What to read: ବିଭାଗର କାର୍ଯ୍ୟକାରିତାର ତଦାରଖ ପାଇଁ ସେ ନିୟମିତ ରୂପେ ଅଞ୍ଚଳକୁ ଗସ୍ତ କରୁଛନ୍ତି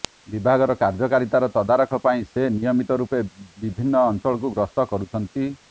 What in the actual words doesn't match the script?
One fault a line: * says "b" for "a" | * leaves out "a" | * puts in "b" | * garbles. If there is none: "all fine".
* puts in "ବିଭିନ୍ନ"